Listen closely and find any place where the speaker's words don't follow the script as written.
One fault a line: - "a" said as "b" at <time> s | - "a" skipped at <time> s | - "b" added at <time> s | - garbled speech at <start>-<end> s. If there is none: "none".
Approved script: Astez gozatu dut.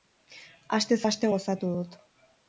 - "aste" added at 1.1 s